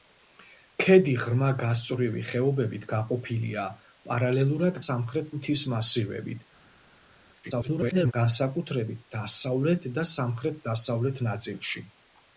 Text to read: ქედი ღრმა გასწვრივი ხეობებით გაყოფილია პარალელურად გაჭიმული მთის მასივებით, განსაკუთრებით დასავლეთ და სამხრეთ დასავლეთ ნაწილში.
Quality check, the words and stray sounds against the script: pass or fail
fail